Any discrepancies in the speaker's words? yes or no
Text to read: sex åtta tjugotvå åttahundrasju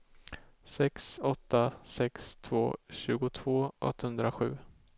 yes